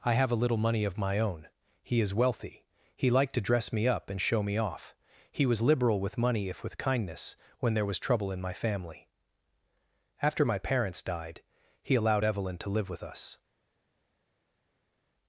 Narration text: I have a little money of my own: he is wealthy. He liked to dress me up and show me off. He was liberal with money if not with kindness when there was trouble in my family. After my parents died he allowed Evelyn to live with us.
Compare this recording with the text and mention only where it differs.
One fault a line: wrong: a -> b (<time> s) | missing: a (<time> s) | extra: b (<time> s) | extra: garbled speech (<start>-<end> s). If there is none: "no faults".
missing: not (6.6 s)